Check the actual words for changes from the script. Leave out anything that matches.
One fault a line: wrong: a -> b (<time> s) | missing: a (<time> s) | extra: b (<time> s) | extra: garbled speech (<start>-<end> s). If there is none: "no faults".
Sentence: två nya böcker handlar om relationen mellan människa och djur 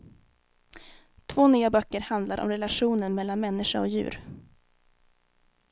no faults